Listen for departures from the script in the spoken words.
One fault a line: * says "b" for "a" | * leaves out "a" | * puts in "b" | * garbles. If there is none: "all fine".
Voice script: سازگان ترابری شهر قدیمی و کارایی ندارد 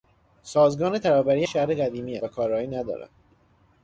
all fine